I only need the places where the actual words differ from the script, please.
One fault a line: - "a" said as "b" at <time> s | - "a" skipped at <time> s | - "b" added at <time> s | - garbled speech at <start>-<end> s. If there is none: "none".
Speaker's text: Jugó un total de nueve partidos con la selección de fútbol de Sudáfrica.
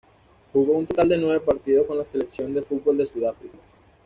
none